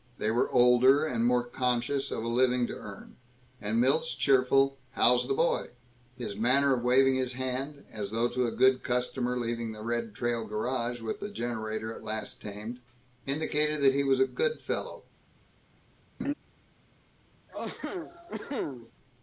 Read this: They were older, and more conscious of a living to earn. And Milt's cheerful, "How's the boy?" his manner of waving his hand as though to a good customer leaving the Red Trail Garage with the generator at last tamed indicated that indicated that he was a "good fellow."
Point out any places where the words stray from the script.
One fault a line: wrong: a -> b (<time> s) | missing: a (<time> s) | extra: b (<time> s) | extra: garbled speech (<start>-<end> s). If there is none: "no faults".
missing: indicated that (13.9 s)